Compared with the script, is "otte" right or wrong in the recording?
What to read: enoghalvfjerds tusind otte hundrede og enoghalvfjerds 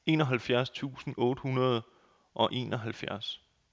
right